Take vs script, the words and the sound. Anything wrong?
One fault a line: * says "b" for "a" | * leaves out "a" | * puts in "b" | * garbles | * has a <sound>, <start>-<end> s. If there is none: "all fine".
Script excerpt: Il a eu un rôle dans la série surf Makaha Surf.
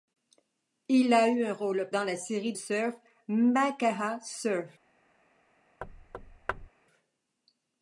* has a thud, 5.8-6.7 s